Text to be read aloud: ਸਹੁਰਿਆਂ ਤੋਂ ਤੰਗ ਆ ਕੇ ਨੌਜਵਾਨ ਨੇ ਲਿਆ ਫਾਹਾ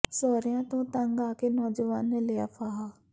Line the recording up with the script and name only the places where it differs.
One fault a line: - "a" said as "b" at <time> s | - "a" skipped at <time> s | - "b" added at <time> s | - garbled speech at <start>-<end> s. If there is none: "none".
none